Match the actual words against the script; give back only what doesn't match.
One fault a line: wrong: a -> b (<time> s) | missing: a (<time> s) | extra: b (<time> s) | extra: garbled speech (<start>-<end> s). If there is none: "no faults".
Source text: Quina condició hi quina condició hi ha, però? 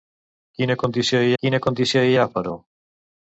no faults